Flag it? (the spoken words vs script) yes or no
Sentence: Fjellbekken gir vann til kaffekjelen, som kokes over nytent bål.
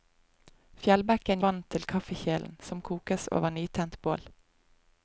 yes